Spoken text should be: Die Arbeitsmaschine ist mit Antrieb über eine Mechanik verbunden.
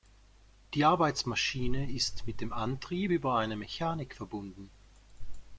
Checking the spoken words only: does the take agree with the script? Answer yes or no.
no